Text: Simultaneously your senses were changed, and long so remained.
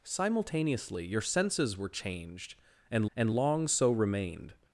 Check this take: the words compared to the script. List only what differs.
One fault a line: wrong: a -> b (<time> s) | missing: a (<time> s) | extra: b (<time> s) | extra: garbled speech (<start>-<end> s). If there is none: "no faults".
extra: and (3.1 s)